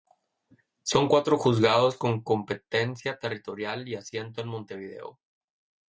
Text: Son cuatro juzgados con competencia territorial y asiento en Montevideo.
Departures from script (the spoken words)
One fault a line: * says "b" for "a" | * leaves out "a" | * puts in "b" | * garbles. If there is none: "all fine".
all fine